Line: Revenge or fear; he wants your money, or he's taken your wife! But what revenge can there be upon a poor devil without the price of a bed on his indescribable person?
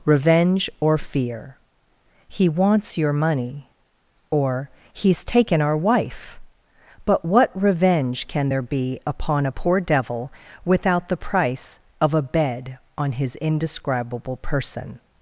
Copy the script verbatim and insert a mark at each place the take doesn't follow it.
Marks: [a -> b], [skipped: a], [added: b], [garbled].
Revenge or fear; he wants your money, or he's taken [your -> our] wife! But what revenge can there be upon a poor devil without the price of a bed on his indescribable person?